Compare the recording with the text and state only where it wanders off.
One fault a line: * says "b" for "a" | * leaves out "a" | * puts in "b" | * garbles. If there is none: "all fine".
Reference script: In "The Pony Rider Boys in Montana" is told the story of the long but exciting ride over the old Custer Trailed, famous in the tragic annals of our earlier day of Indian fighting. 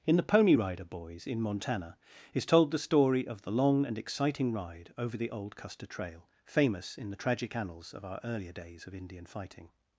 * says "and" for "but"
* says "Trail" for "Trailed"
* says "days" for "day"